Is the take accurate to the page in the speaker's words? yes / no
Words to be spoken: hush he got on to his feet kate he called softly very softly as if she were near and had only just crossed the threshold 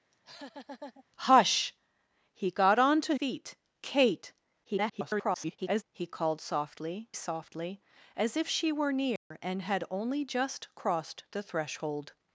no